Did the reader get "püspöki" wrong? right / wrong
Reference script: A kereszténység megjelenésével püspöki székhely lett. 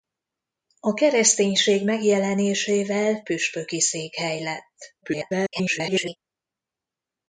right